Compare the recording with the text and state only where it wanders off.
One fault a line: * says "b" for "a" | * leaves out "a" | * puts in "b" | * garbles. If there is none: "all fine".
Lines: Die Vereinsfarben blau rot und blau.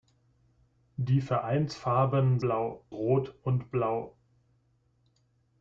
all fine